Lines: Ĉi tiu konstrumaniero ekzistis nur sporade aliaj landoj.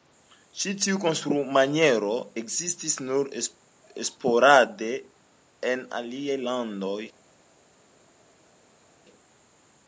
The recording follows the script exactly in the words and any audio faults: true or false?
false